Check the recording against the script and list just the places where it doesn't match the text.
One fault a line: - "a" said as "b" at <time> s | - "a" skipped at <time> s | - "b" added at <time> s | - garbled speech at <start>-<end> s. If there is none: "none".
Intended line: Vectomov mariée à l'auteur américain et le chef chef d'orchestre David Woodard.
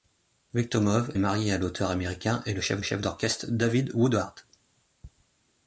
none